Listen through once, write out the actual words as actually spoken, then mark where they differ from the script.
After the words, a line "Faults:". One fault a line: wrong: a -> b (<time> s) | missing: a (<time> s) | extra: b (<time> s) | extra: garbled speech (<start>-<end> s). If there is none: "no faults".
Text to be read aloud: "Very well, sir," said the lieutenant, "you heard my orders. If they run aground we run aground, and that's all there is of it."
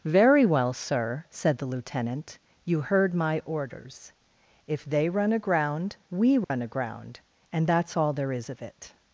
"Very well, sir," said the lieutenant, "you heard my orders. If they run aground we run aground, and that's all there is of it."
Faults:
no faults